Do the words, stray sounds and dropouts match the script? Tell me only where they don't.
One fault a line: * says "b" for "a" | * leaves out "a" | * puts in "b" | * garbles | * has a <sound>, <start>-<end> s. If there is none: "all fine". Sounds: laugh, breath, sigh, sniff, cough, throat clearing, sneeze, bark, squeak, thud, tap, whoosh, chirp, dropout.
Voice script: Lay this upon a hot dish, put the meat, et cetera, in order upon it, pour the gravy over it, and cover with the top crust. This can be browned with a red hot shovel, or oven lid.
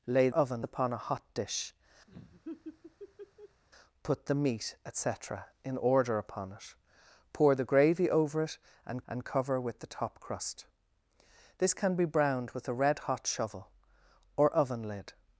* says "oven" for "this"
* has a laugh, 2.1-3.6 s
* puts in "and"